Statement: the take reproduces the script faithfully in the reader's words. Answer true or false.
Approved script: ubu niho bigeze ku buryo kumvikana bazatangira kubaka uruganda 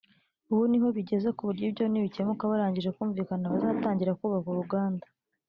false